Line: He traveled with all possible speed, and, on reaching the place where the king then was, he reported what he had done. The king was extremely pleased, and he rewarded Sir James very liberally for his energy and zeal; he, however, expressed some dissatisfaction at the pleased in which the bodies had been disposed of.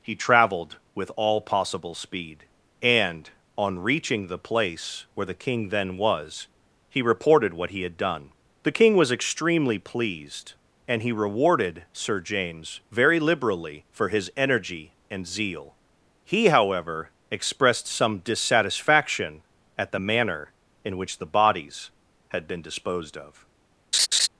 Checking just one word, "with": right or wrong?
right